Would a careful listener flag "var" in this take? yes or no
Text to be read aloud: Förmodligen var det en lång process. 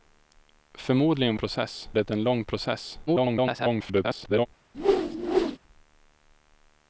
yes